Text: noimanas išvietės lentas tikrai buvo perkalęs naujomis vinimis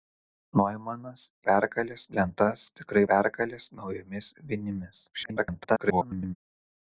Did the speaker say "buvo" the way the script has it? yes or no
no